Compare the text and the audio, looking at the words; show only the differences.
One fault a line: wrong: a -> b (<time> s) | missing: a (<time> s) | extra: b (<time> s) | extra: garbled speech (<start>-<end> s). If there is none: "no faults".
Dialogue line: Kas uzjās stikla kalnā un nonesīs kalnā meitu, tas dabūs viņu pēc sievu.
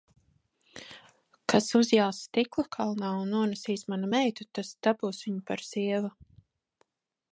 wrong: kalnā -> manu (3.9 s)
wrong: pēc -> par (5.5 s)